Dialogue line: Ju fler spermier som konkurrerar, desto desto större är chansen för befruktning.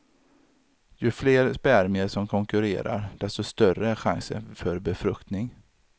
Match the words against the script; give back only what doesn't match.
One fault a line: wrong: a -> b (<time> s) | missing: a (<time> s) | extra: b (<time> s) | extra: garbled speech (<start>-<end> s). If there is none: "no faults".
missing: desto (3.4 s)